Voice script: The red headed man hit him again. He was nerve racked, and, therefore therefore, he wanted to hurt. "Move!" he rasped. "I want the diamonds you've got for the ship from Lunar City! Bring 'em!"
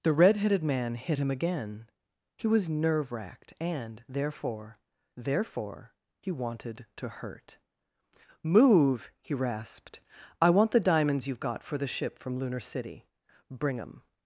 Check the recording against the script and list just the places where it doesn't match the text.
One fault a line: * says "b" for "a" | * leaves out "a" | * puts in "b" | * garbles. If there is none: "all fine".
all fine